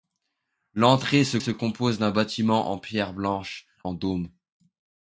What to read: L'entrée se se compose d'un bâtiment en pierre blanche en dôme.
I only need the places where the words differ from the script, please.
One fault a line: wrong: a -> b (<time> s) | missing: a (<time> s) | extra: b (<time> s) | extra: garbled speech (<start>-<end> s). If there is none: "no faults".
no faults